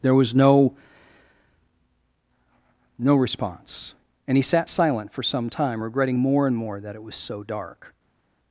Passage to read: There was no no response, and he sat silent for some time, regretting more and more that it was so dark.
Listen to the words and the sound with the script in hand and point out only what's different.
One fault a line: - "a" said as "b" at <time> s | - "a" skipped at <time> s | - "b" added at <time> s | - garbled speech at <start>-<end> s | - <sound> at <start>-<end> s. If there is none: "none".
none